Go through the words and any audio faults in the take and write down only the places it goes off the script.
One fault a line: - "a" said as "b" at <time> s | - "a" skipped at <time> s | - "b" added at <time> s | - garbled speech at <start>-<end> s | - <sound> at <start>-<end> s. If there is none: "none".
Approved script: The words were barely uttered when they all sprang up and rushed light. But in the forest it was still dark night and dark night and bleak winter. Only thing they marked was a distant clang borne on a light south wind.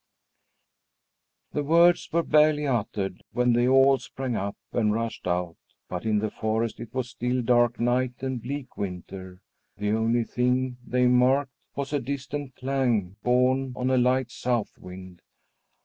- "light" said as "out" at 5.3 s
- "dark night and" skipped at 8.4 s
- "The" added at 9.8 s